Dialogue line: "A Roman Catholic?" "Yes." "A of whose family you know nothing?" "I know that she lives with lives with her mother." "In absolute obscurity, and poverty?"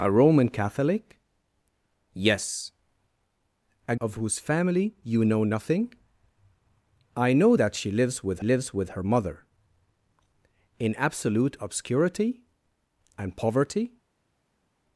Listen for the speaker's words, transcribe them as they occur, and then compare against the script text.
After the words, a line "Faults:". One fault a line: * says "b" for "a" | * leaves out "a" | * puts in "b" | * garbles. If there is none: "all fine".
"A Roman Catholic?" "Yes." "A of whose family you know nothing?" "I know that she lives with lives with her mother." "In absolute obscurity, and poverty?"
Faults:
all fine